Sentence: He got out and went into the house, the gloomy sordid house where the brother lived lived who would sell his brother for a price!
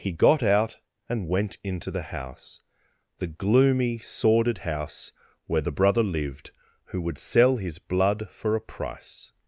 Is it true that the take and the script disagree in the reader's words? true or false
true